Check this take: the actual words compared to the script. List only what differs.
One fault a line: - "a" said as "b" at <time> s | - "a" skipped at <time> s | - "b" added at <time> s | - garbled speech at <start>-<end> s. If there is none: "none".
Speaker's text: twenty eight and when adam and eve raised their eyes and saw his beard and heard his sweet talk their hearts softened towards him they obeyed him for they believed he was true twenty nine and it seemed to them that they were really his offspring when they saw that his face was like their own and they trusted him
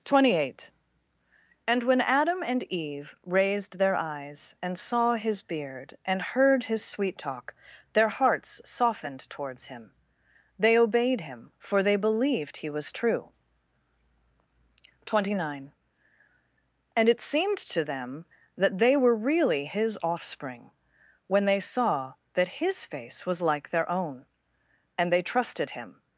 none